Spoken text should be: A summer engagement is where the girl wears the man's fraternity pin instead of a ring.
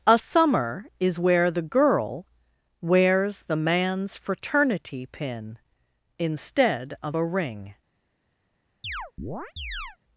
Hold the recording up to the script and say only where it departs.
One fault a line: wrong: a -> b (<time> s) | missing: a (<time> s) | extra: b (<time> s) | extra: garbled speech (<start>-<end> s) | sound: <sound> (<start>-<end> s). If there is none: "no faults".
missing: engagement (0.9 s)
sound: chirp (8.8-10.0 s)